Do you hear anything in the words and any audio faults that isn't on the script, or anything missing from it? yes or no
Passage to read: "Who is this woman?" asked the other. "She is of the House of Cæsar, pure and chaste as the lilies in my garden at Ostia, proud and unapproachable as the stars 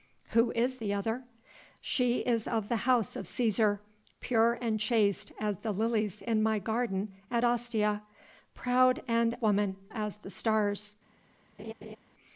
yes